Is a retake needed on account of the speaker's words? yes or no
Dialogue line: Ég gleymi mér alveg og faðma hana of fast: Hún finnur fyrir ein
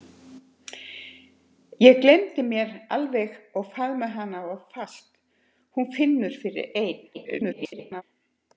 yes